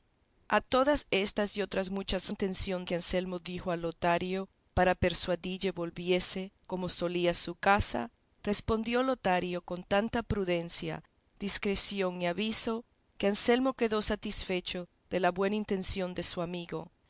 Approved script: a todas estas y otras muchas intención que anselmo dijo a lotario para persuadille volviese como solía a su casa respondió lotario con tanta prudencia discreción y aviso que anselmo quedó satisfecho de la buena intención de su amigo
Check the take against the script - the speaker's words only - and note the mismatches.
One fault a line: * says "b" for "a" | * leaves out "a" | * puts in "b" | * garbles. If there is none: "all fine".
all fine